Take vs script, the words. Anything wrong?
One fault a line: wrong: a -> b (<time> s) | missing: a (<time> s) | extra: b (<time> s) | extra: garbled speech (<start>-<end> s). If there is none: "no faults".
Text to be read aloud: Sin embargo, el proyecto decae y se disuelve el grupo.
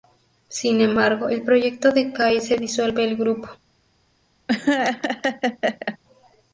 no faults